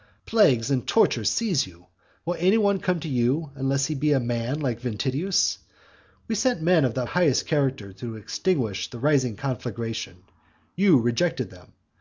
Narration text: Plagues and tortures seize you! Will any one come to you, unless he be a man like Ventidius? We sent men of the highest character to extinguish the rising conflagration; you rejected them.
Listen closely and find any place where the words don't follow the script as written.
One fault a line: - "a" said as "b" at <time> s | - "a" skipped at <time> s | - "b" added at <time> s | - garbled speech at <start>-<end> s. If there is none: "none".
none